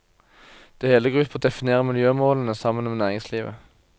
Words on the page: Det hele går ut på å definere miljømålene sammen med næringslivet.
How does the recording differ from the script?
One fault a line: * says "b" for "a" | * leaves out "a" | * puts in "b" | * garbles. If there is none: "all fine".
all fine